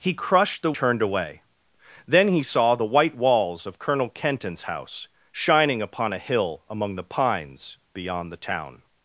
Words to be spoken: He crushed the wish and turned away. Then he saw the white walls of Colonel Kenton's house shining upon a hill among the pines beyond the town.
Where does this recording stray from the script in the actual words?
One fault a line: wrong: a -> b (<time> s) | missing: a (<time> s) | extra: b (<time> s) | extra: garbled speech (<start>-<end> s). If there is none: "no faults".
missing: wish and (0.7 s)